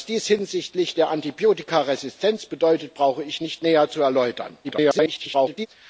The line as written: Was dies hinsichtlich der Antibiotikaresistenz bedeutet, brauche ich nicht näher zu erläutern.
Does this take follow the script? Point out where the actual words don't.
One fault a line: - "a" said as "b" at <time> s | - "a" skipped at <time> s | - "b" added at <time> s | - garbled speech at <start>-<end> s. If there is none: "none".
- garbled speech at 4.6-5.7 s